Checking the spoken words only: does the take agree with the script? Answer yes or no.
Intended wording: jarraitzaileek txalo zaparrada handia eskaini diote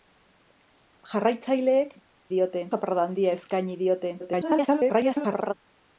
no